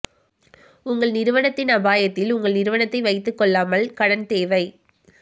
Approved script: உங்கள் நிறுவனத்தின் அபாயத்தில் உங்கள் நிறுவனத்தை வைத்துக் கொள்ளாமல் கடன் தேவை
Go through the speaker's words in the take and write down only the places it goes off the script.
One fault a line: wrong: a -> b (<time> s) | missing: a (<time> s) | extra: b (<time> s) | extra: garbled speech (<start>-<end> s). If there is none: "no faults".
no faults